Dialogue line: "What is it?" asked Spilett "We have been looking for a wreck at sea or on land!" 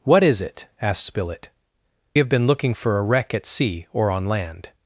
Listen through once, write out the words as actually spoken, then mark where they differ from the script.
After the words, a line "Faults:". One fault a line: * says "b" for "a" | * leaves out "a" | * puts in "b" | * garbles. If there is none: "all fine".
"What is it?" asked Spilett "Have been looking for a wreck at sea or on land!"
Faults:
* leaves out "We"